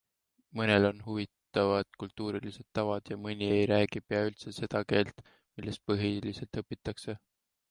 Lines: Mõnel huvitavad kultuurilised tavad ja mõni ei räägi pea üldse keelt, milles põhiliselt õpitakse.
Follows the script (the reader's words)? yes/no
no